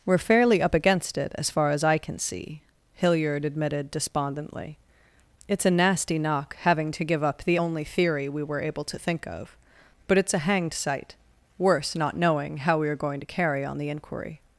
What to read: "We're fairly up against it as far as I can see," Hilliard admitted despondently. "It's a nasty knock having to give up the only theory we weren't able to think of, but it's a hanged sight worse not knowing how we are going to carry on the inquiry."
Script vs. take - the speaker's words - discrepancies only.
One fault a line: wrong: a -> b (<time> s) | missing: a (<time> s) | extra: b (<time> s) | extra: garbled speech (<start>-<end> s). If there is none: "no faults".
wrong: weren't -> were (8.4 s)